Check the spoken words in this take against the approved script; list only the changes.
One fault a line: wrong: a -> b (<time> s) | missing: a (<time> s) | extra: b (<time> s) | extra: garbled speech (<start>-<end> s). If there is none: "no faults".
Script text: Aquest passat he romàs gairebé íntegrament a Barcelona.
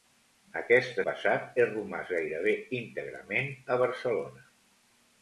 no faults